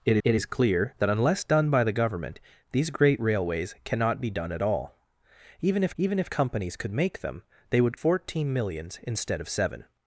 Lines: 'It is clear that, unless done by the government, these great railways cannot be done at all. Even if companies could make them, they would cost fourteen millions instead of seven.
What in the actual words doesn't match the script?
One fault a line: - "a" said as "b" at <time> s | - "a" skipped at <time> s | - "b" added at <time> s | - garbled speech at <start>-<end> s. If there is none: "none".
- "it" added at 0.2 s
- "even if" added at 6.0 s
- "cost" skipped at 8.0 s